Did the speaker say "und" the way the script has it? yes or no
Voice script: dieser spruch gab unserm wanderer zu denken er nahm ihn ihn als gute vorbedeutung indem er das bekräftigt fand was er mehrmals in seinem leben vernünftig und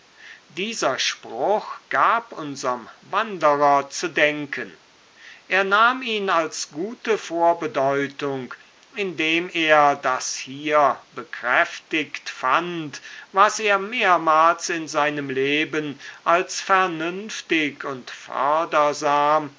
yes